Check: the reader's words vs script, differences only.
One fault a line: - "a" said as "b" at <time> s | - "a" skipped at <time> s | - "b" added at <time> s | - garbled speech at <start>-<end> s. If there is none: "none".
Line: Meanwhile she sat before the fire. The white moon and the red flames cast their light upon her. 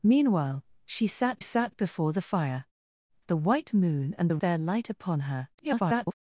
- "sat" added at 1.4 s
- "red flames cast" skipped at 4.4 s
- garbled speech at 5.6-6.1 s